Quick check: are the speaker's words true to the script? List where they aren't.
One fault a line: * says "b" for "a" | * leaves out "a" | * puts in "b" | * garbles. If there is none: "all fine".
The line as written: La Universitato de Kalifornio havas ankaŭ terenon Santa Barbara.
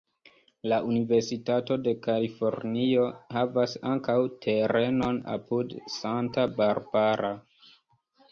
* puts in "apud"